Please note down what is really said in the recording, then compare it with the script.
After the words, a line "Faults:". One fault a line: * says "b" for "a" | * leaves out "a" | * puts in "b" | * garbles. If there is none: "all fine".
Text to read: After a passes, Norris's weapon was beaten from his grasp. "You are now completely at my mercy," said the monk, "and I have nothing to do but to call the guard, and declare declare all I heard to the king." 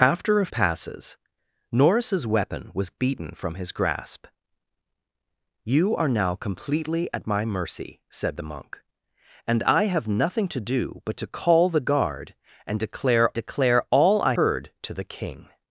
After a passes, Norris's weapon was beaten from his grasp. "You are now completely at my mercy," said the monk, "and I have nothing to do but to call the guard, and declare declare all I heard to the king."
Faults:
all fine